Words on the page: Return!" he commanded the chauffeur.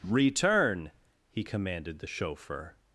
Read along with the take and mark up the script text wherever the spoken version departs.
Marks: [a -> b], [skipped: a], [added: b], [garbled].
Return!" he commanded the chauffeur.